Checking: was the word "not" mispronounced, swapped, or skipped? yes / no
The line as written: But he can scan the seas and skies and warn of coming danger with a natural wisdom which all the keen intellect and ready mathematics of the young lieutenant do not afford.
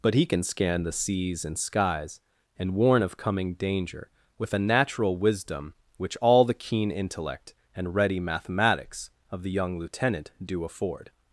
yes